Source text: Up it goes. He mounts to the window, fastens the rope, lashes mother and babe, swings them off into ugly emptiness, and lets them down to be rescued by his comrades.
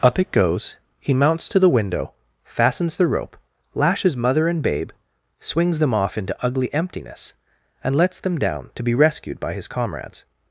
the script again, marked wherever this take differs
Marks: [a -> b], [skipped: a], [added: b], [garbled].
Up it goes. He mounts to the window, fastens the rope, lashes mother and babe, swings them off into ugly emptiness, and lets them down to be rescued by his comrades.